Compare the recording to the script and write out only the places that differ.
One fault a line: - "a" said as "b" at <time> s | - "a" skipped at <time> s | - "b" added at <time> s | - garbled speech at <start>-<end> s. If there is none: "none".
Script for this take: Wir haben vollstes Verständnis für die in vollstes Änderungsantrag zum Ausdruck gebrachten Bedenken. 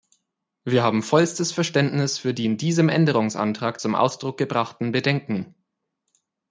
- "vollstes" said as "diesem" at 2.6 s